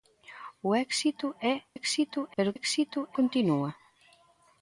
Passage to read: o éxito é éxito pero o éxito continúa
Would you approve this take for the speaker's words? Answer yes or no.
yes